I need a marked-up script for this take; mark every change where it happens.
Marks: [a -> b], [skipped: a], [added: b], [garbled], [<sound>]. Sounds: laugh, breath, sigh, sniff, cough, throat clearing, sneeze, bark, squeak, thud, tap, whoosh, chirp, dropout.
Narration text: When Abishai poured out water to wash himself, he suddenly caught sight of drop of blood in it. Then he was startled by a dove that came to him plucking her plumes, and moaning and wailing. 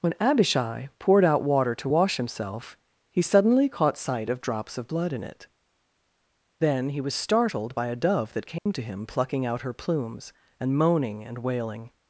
When Abishai poured out water to wash himself, he suddenly caught sight of [drop -> drops] of blood in it. Then he was startled by a dove that came [dropout] to him plucking [added: out] her plumes, and moaning and wailing.